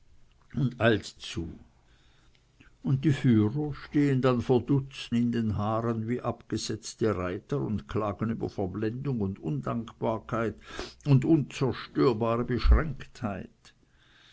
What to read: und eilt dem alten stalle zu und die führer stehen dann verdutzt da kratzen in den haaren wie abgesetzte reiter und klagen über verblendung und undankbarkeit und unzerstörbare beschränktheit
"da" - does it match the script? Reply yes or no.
no